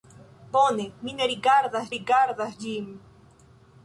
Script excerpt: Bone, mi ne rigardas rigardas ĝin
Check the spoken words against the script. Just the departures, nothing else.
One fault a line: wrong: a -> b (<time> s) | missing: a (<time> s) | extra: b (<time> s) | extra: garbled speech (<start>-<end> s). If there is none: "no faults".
no faults